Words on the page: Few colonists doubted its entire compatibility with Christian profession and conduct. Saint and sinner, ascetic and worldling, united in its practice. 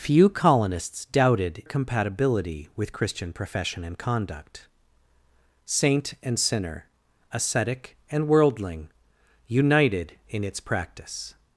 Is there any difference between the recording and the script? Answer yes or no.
yes